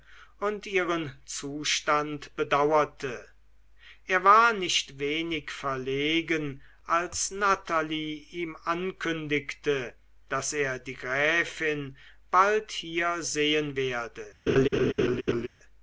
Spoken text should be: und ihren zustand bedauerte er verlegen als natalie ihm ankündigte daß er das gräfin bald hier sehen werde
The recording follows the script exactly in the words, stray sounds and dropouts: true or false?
false